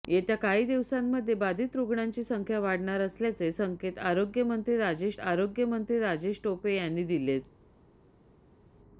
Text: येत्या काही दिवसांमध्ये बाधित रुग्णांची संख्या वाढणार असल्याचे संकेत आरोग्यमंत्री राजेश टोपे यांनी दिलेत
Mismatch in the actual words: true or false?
true